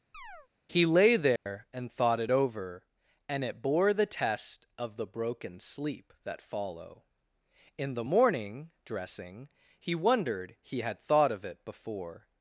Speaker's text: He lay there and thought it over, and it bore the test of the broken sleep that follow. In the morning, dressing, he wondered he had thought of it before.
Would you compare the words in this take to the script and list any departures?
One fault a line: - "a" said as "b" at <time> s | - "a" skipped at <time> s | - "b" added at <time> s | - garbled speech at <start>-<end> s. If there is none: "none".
none